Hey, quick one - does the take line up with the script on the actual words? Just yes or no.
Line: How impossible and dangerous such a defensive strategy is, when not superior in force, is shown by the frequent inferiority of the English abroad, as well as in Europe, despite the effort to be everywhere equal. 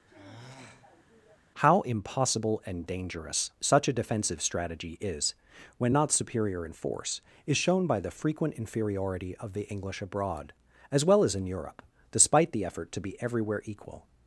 yes